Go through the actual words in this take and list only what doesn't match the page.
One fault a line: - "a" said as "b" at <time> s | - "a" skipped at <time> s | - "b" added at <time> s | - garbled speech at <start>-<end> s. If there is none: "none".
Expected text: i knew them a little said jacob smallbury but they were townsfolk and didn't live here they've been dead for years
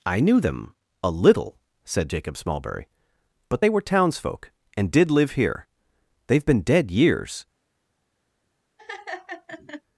- "didn't" said as "did" at 4.9 s
- "for" skipped at 6.9 s